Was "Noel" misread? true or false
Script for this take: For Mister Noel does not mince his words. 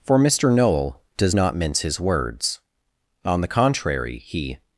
false